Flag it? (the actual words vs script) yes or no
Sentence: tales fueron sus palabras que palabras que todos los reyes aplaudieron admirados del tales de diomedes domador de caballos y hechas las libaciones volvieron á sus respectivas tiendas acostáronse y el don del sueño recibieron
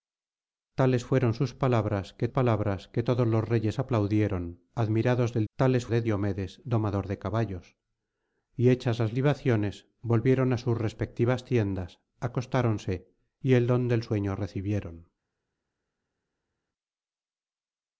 no